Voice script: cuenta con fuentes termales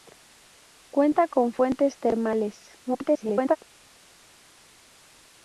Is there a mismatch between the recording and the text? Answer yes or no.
yes